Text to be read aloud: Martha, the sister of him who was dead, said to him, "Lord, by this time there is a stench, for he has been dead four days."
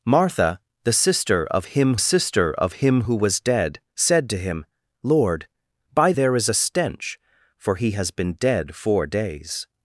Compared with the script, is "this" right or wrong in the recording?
wrong